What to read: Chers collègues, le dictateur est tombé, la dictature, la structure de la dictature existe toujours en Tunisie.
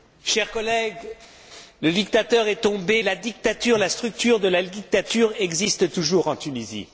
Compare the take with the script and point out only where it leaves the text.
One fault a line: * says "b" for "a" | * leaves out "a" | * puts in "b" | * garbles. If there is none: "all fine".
all fine